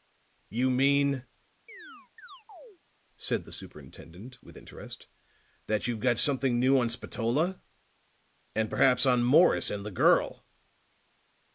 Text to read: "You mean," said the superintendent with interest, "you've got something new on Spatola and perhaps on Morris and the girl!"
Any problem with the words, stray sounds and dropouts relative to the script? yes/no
yes